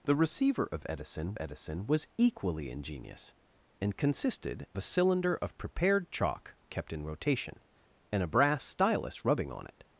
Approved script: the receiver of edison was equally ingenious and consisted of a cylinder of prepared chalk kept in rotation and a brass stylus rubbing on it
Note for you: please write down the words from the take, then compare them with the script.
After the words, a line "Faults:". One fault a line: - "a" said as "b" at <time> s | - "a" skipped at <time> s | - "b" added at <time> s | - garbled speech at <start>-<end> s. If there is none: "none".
the receiver of edison edison was equally ingenious and consisted a cylinder of prepared chalk kept in rotation and a brass stylus rubbing on it
Faults:
- "edison" added at 1.4 s
- "of" skipped at 4.7 s